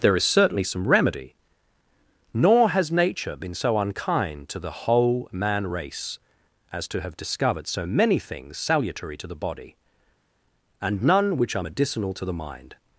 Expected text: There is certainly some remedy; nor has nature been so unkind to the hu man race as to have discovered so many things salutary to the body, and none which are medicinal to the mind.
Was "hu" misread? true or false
true